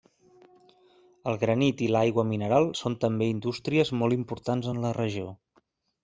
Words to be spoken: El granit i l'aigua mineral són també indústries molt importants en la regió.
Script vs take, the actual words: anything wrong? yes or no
no